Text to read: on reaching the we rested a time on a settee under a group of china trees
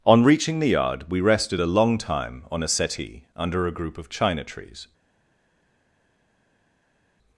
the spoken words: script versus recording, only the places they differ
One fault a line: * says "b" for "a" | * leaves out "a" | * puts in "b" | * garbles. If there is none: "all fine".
* puts in "yard"
* puts in "long"